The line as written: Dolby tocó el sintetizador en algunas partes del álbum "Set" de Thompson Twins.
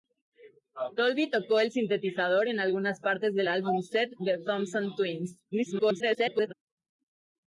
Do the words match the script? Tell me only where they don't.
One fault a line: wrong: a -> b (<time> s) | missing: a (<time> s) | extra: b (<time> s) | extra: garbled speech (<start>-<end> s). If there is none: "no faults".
extra: garbled speech (5.5-6.5 s)